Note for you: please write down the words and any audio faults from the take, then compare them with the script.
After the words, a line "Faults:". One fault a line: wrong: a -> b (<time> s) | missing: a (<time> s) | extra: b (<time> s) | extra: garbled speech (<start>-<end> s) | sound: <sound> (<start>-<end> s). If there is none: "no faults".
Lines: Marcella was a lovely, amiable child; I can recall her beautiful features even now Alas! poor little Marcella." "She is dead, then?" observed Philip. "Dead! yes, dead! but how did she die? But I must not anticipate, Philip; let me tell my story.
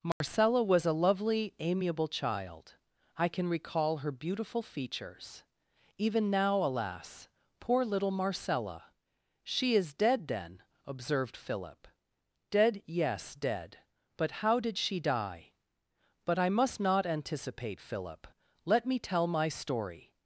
Marcella was a lovely, amiable child; I can recall her beautiful features even now Alas! poor little Marcella." "She is dead, then?" observed Philip. "Dead! yes, dead! but how did she die? But I must not anticipate, Philip; let me tell my story.
Faults:
sound: dropout (0.1-0.2 s)